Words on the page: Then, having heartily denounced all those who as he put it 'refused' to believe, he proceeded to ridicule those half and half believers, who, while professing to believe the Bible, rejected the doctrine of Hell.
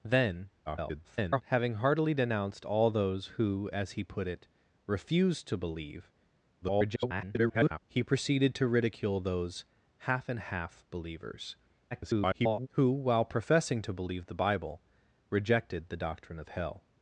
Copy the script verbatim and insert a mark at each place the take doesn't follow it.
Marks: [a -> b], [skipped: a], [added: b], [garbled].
Then, [garbled] having heartily denounced all those who as he put it 'refused' to believe, [garbled] he proceeded to ridicule those half and half believers, [garbled] who, while professing to believe the Bible, rejected the doctrine of Hell.